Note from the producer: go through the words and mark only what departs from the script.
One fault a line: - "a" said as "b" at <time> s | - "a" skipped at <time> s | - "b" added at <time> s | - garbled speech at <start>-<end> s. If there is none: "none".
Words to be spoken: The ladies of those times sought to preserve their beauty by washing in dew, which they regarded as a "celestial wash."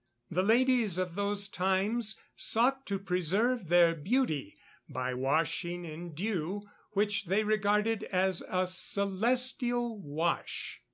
none